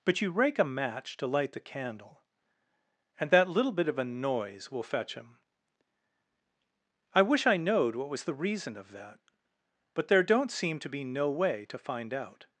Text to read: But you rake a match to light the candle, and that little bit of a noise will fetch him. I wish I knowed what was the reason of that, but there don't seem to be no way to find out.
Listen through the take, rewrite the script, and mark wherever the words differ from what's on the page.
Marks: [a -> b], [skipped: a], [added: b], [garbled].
But you rake a match to light the candle, and that little bit of a noise will fetch him. I wish I knowed what was the reason of that, but there don't seem to be no way to find out.